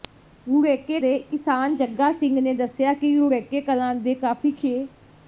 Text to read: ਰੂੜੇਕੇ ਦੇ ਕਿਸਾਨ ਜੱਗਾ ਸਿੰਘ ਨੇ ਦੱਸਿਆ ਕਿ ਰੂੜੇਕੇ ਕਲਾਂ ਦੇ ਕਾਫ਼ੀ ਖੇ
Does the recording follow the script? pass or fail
pass